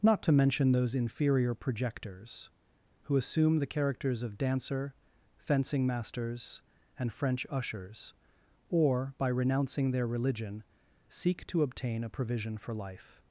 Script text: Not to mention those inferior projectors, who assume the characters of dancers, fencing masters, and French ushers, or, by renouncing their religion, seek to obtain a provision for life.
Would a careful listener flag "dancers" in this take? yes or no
yes